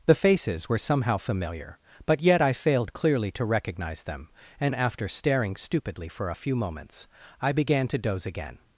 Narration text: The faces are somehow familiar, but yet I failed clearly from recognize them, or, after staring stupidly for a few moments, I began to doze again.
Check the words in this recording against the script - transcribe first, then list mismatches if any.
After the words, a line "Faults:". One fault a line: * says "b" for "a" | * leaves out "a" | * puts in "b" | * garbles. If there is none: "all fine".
The faces were somehow familiar, but yet I failed clearly to recognize them, and, after staring stupidly for a few moments, I began to doze again.
Faults:
* says "were" for "are"
* says "to" for "from"
* says "and" for "or"